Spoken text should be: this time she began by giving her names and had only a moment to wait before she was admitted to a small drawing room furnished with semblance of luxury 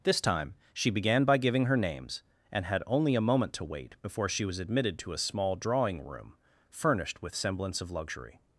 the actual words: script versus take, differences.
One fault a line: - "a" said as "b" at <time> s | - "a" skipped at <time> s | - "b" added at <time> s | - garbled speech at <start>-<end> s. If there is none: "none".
none